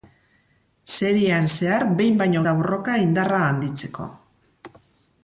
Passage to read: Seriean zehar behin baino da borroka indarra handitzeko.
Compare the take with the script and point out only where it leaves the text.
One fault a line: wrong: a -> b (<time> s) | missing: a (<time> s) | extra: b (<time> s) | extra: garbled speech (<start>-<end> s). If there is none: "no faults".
no faults